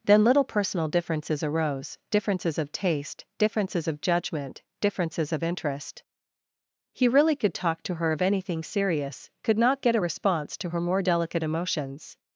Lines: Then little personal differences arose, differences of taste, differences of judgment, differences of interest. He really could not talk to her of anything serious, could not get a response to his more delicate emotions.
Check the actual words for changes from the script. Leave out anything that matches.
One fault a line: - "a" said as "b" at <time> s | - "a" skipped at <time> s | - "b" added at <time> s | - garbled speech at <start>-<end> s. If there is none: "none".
- "not" skipped at 7.5 s
- "his" said as "her" at 10.7 s